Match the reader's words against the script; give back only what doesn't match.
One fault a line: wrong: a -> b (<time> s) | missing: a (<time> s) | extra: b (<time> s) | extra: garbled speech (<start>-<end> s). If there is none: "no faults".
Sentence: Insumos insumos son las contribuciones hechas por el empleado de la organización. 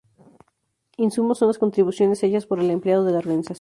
missing: insumos (1.4 s)